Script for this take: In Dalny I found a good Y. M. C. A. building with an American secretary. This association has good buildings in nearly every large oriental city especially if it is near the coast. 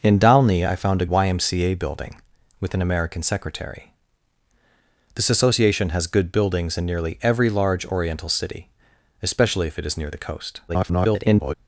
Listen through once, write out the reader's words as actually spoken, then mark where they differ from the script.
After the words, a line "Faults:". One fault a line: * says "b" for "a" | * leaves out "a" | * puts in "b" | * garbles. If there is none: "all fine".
In Dalny I found a Y. M. C. A. building with an American secretary. This association has good buildings in nearly every large oriental city especially if it is near the coast. [garbled]
Faults:
* leaves out "good"
* garbles